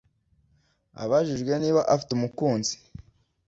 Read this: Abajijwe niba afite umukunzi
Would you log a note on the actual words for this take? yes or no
no